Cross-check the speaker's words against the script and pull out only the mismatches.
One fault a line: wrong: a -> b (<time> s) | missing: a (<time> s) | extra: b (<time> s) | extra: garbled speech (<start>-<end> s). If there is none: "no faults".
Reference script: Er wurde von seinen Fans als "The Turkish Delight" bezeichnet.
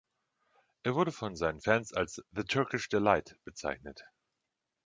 no faults